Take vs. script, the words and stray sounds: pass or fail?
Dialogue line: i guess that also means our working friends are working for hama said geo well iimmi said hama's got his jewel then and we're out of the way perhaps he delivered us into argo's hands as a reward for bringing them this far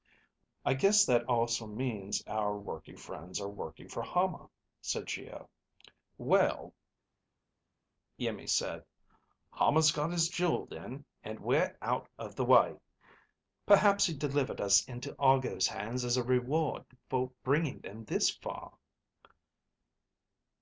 pass